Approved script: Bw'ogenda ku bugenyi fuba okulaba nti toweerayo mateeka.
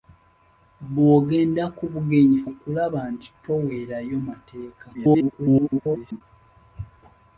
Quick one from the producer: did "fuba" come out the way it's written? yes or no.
no